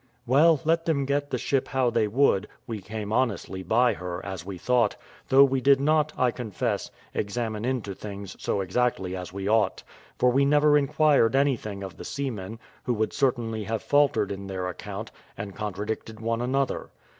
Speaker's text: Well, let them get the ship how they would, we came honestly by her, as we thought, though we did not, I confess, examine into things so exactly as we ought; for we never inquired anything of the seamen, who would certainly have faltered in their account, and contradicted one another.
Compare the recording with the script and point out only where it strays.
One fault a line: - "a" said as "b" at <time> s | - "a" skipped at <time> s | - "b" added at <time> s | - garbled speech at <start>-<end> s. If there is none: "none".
none